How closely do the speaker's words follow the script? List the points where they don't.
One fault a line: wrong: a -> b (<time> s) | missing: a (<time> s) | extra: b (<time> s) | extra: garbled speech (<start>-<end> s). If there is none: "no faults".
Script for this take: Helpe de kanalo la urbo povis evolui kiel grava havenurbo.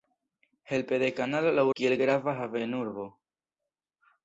missing: urbo povis evolui (1.6 s)